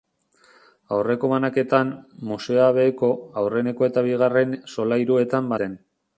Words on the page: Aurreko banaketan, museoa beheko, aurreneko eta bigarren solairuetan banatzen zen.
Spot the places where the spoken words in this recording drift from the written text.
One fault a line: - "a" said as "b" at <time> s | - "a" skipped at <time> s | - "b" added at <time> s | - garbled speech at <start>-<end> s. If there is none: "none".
- "banatzen" skipped at 5.6 s